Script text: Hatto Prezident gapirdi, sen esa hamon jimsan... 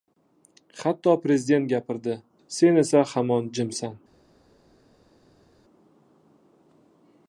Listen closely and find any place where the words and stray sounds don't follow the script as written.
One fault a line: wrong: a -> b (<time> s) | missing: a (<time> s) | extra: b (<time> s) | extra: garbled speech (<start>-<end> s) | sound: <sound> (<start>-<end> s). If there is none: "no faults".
no faults